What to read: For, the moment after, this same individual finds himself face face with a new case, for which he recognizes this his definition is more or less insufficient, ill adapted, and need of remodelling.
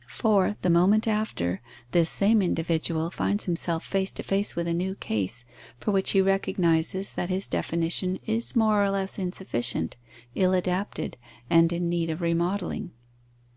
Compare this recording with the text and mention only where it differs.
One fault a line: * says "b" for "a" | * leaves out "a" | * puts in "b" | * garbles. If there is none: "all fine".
* puts in "to"
* says "that" for "this"
* puts in "in"